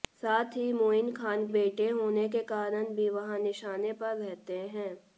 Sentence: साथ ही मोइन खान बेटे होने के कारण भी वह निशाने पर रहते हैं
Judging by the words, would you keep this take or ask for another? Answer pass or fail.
pass